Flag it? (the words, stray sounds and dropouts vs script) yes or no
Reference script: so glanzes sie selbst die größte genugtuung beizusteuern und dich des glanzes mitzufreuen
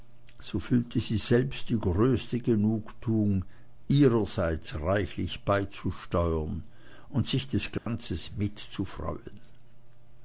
yes